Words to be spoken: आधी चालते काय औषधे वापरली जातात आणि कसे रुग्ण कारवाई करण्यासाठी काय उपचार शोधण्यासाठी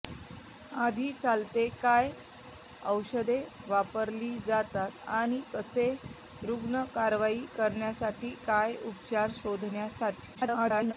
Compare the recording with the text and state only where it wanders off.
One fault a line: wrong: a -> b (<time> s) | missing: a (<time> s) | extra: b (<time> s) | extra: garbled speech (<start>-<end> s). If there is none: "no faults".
extra: garbled speech (10.3-10.9 s)